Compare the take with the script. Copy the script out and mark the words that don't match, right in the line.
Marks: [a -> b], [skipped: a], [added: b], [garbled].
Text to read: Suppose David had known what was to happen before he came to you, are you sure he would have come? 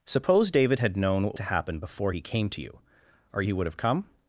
Suppose David had known what [skipped: was] to happen before he came to you, are [skipped: you sure] he would have come?